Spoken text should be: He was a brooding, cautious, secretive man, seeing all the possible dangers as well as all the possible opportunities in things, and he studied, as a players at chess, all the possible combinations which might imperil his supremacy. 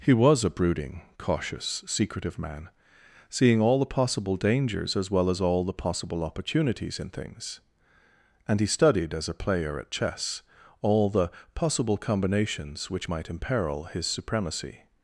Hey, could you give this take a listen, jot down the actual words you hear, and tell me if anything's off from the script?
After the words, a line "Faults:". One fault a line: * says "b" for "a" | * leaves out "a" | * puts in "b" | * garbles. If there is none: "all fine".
He was a brooding, cautious, secretive man, seeing all the possible dangers as well as all the possible opportunities in things, and he studied, as a player at chess, all the possible combinations which might imperil his supremacy.
Faults:
* says "player" for "players"